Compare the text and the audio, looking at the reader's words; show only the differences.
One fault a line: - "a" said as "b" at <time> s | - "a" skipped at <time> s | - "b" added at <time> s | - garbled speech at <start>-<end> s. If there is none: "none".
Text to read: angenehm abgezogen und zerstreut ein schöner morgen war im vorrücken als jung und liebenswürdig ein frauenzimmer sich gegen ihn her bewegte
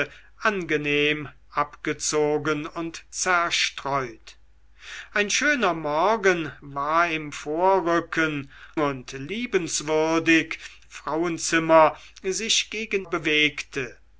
- "als jung" skipped at 8.5 s
- "ein" skipped at 10.6 s
- "ihn her" skipped at 13.0 s